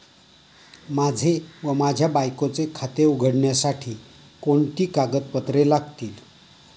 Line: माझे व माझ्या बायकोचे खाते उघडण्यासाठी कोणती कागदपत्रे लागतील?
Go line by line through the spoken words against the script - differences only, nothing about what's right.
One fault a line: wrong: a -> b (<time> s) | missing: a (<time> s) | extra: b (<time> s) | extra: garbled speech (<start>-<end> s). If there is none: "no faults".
no faults